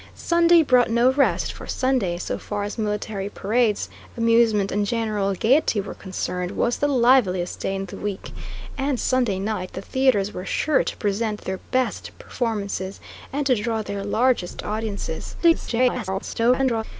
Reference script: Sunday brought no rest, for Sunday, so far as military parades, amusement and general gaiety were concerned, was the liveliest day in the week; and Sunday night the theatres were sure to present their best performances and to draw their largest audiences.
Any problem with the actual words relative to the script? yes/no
yes